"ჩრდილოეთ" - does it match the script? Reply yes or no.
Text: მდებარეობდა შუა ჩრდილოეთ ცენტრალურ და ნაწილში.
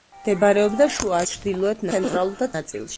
yes